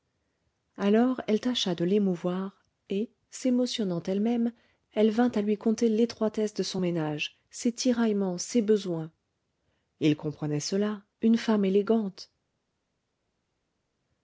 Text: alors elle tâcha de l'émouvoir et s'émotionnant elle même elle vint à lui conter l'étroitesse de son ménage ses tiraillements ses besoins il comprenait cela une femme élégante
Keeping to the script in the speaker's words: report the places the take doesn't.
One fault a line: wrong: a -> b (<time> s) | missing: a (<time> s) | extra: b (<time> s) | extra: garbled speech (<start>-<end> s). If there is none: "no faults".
no faults